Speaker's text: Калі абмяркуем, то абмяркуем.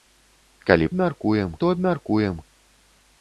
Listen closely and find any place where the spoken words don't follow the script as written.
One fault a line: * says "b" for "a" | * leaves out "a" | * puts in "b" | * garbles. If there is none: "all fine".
all fine